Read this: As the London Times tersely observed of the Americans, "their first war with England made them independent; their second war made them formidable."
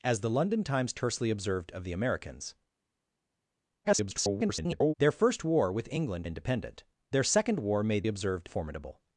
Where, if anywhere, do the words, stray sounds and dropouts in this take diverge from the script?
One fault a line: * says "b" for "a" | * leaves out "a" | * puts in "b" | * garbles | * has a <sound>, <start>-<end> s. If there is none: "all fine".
* garbles
* leaves out "made them"
* says "observed" for "them"